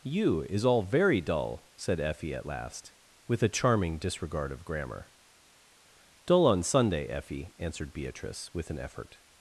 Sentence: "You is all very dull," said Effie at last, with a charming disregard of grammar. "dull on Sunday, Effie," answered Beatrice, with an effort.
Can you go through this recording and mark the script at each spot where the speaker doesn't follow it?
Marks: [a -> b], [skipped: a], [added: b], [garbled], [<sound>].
"You is all very dull," said Effie at last, with a charming disregard of grammar. "dull on Sunday, Effie," answered Beatrice, with an effort.